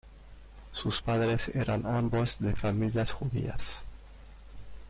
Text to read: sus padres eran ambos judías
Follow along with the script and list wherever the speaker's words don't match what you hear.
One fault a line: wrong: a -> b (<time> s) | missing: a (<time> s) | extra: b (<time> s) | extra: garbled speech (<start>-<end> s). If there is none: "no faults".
extra: de familias (2.4 s)